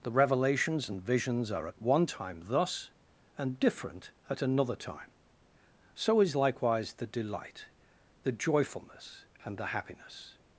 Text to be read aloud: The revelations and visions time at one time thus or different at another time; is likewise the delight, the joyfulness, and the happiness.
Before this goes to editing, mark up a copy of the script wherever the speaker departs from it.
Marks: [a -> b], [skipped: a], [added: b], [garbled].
The revelations and visions [time -> are] at one time thus [or -> and] different at another time; [added: so] is likewise the delight, the joyfulness, and the happiness.